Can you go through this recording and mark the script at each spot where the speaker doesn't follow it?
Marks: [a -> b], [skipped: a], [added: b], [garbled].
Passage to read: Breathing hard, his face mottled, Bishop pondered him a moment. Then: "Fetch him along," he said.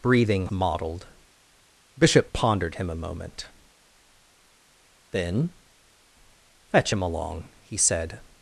Breathing [skipped: hard, his face] mottled, Bishop pondered him a moment. Then: "Fetch him along," he said.